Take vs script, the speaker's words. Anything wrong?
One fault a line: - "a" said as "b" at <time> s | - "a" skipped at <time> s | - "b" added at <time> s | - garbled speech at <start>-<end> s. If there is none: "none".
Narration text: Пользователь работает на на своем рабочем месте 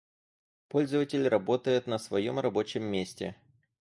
- "на" skipped at 2.0 s